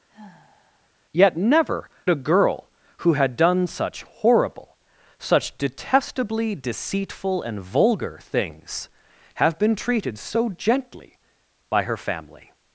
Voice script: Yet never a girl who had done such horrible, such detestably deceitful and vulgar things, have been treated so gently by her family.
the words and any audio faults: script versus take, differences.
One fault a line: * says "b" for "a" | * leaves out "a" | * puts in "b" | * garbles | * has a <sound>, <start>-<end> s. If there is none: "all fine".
* has a sigh, 0.1-0.9 s